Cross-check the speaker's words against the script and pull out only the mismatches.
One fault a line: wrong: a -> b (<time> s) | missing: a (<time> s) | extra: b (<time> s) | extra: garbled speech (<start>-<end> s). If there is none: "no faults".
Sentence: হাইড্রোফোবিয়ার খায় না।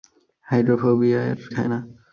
no faults